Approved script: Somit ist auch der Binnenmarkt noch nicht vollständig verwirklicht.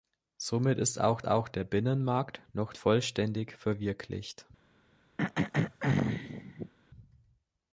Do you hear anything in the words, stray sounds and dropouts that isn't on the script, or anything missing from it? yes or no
yes